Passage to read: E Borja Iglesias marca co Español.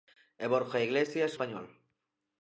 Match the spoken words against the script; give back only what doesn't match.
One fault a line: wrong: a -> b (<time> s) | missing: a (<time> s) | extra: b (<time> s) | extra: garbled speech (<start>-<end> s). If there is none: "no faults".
missing: marca co (1.3 s)